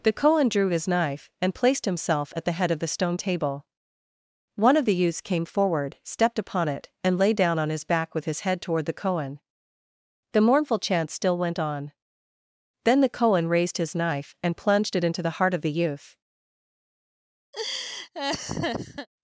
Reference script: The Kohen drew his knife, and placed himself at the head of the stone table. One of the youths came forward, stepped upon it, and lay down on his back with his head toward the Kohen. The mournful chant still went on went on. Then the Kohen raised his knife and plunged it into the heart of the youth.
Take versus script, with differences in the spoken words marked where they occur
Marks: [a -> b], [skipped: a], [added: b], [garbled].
The Kohen drew his knife, and placed himself at the head of the stone table. One of the youths came forward, stepped upon it, and lay down on his back with his head toward the Kohen. The mournful chant still went on [skipped: went on.] Then the Kohen raised his knife and plunged it into the heart of the youth.